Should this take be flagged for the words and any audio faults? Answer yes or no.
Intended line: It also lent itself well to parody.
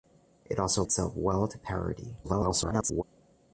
yes